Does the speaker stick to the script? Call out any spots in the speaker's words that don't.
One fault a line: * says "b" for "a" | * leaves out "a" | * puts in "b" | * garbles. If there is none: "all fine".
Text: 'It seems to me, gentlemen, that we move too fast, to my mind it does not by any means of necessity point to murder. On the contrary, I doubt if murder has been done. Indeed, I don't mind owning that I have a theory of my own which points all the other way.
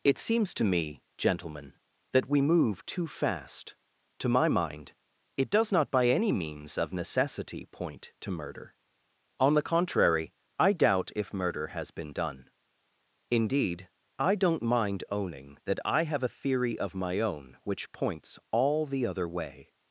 all fine